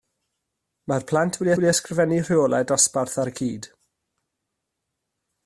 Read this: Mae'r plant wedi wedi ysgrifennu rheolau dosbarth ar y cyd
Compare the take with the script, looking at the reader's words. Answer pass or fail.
pass